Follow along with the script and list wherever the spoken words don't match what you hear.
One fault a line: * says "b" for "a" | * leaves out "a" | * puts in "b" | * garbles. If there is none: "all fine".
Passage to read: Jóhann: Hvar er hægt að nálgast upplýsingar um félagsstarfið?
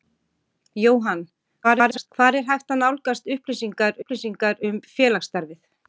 * garbles
* puts in "upplýsingar"